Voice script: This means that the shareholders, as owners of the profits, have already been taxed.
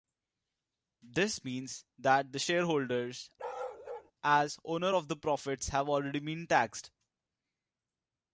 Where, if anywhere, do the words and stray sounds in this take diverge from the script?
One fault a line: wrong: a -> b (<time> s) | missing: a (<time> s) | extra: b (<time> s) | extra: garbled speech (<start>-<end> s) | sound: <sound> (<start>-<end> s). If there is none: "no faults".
sound: bark (3.4-4.1 s)